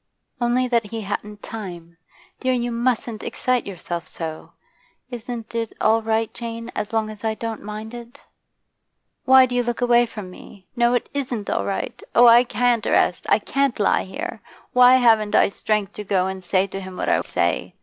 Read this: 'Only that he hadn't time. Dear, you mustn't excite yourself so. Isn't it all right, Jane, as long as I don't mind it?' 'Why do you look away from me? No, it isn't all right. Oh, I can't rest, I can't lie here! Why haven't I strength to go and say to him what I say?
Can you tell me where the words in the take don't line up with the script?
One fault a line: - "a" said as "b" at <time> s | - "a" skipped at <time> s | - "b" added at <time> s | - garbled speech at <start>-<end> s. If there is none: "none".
none